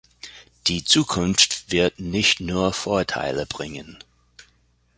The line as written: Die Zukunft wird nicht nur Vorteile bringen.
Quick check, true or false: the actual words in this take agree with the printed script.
true